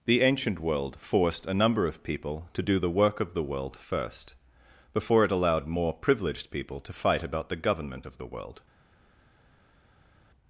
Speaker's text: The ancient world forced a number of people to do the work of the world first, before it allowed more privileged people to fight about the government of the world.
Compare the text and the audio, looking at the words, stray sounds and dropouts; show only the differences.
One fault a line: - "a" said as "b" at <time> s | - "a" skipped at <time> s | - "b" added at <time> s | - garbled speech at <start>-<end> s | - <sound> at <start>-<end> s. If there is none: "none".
none